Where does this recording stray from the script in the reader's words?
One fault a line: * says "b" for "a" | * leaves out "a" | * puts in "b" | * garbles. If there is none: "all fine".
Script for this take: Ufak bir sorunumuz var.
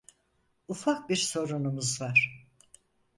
all fine